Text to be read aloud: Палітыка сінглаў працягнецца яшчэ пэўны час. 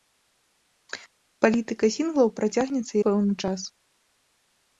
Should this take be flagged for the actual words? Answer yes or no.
yes